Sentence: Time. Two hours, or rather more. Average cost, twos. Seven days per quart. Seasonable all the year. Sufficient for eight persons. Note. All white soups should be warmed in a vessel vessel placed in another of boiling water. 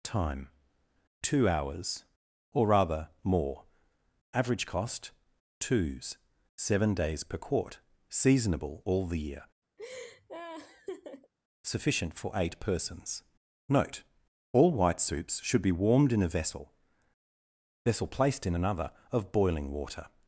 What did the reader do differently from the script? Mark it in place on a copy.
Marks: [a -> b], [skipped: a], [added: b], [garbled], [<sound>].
Time. Two hours, or rather more. Average cost, twos. Seven days per quart. Seasonable all the year. [laugh] Sufficient for eight persons. Note. All white soups should be warmed in a vessel vessel placed in another of boiling water.